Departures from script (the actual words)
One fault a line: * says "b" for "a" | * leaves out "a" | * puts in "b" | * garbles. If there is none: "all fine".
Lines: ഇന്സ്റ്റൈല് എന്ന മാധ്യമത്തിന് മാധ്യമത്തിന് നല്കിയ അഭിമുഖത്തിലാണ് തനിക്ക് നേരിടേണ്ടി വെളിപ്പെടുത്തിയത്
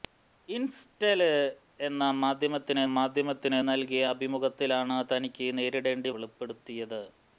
all fine